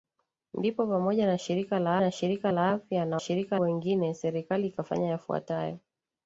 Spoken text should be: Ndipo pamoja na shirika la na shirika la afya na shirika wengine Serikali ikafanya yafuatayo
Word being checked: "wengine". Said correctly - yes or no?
yes